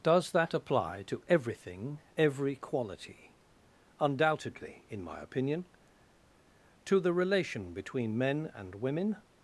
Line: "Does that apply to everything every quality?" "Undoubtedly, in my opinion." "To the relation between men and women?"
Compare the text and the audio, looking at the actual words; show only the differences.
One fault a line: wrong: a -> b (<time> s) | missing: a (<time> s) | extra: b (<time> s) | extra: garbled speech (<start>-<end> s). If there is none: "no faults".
no faults